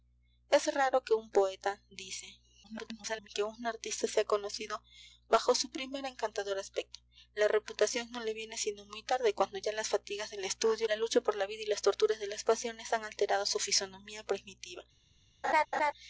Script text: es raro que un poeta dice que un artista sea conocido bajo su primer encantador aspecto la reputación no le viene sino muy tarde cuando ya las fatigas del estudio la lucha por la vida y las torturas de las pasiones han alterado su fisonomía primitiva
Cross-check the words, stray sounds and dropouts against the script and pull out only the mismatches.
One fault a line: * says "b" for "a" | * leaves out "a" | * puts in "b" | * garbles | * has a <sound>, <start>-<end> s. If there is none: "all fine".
* garbles
* has a laugh, 15.4-15.9 s